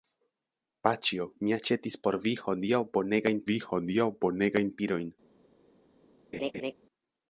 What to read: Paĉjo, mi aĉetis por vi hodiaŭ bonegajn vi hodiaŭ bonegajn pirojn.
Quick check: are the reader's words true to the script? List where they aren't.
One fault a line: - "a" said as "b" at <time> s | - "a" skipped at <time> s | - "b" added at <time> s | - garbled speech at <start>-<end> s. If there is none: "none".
none